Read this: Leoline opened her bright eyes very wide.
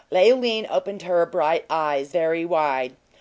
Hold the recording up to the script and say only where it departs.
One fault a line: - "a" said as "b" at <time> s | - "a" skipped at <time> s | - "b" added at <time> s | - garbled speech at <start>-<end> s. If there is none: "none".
none